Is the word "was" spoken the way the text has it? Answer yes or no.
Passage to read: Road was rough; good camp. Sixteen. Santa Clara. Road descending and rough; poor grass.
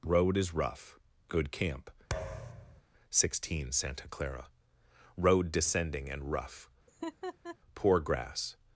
no